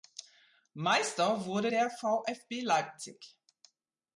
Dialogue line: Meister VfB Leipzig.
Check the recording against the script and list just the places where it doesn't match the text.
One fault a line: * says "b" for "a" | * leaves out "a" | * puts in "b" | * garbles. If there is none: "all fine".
* puts in "wurde der"